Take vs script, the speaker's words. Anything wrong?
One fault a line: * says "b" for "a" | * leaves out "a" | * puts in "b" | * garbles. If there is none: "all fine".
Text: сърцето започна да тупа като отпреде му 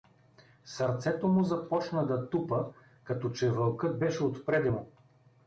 * puts in "му"
* puts in "че вълкът беше"